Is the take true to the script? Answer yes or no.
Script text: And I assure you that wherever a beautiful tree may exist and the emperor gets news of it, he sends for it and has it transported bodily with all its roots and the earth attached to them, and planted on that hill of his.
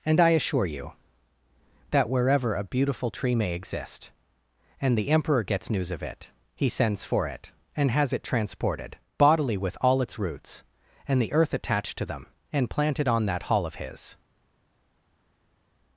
no